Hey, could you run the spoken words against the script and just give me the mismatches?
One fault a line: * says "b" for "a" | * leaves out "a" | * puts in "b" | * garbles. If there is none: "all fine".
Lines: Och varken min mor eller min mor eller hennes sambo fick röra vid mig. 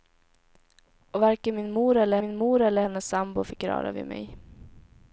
all fine